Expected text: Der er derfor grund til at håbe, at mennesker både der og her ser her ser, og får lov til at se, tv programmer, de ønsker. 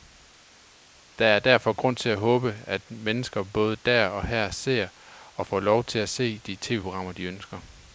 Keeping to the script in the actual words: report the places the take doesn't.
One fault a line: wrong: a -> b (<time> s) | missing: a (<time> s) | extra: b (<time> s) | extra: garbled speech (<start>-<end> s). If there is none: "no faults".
missing: her ser (4.9 s)
extra: de (6.4 s)